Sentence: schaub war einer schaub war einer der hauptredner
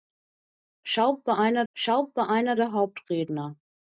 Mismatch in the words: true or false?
false